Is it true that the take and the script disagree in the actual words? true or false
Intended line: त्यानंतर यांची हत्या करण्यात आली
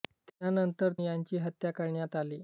false